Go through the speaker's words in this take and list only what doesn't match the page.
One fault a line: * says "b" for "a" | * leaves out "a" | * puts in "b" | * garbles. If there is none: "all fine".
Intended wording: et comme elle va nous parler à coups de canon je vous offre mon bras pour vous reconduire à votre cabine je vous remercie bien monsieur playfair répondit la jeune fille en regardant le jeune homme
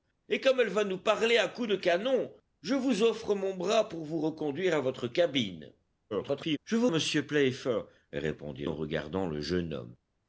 * garbles
* leaves out "remercie bien"
* leaves out "la jeune fille"